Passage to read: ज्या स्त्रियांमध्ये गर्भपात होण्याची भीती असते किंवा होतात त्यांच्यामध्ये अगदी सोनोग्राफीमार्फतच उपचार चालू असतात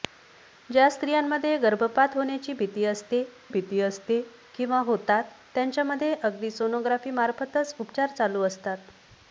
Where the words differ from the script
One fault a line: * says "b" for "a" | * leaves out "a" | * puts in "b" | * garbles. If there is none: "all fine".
* puts in "भीती असते"